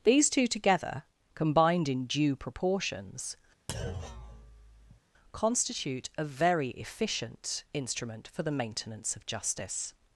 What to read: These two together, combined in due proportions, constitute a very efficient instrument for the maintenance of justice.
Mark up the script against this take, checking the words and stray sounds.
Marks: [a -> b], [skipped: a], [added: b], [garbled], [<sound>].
These two together, combined in due proportions, [thud] constitute a very efficient instrument for the maintenance of justice.